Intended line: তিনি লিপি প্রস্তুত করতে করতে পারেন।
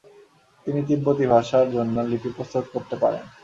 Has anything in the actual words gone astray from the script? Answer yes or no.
yes